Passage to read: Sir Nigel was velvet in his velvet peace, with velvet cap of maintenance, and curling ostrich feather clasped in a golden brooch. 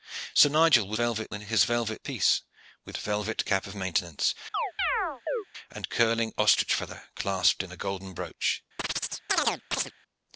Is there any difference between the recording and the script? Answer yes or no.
no